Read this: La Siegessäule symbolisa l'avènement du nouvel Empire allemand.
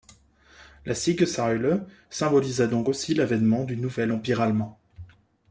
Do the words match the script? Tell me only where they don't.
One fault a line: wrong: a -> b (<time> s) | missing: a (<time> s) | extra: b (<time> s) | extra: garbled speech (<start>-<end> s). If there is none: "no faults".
extra: donc aussi (2.7 s)